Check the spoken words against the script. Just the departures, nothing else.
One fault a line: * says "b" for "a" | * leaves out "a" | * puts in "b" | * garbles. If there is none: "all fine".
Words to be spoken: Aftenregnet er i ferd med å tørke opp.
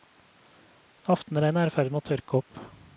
all fine